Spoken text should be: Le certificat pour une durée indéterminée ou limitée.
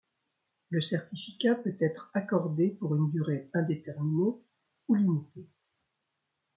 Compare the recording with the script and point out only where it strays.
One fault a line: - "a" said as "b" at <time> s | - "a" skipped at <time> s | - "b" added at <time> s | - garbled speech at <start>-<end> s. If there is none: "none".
- "peut être accordé" added at 1.5 s